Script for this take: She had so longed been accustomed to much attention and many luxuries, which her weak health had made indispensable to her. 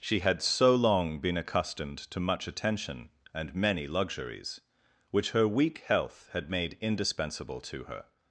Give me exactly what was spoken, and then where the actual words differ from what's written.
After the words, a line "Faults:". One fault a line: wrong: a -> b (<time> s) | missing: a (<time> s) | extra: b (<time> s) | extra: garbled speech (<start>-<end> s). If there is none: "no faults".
She had so long been accustomed to much attention and many luxuries, which her weak health had made indispensable to her.
Faults:
wrong: longed -> long (0.7 s)